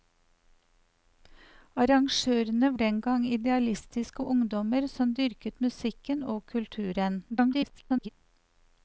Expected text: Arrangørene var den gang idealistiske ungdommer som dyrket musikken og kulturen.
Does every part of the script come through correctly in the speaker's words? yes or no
no